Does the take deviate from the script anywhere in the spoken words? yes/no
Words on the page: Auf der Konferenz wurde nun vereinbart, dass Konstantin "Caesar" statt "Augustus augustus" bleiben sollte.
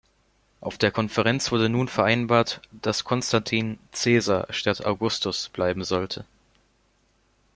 yes